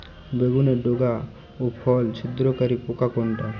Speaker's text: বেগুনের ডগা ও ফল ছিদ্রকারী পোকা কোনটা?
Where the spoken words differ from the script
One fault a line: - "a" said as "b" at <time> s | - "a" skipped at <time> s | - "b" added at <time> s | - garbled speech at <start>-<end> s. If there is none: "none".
none